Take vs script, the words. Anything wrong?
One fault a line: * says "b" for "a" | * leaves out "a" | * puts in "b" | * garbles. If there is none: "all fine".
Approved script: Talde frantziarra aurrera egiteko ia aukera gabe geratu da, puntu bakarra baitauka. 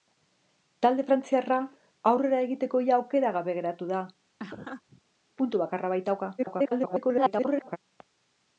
* garbles